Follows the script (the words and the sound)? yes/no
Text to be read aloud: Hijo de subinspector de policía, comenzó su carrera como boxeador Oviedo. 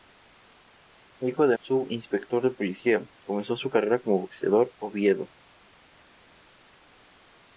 yes